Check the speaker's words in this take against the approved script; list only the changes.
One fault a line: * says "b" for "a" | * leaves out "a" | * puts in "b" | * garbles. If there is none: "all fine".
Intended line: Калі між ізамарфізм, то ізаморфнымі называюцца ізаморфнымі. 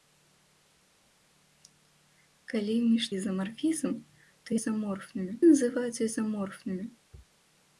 all fine